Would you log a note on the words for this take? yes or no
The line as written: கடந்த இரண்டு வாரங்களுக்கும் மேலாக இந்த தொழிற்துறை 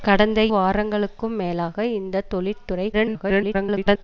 yes